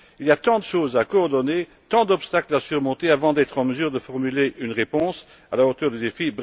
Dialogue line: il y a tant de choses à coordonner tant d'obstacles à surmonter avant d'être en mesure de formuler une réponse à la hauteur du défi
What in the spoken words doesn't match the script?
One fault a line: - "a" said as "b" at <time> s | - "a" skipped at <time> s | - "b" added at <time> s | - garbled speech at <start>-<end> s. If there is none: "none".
none